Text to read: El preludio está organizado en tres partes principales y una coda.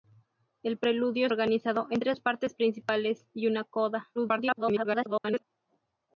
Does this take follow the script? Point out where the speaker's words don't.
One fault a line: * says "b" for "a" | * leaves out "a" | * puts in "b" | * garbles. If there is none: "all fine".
* leaves out "está"
* garbles